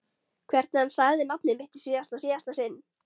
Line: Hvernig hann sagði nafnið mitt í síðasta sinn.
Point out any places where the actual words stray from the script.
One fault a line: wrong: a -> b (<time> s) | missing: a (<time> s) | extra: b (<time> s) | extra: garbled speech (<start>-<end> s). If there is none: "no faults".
extra: síðasta (2.2 s)